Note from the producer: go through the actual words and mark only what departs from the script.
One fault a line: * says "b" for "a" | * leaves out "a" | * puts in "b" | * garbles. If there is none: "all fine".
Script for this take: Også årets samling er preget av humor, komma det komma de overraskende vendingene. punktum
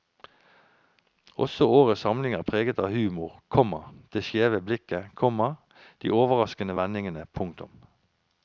* puts in "skjeve blikket"